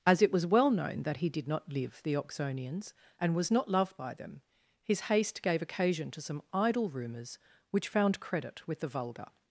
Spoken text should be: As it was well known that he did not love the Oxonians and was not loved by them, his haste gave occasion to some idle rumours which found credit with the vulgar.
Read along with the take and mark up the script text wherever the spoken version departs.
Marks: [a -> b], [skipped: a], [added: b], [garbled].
As it was well known that he did not [love -> live] the Oxonians and was not loved by them, his haste gave occasion to some idle rumours which found credit with the vulgar.